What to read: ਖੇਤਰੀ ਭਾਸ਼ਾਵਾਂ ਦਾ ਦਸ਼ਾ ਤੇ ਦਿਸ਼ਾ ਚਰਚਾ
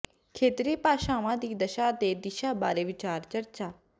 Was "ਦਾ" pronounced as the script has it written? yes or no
no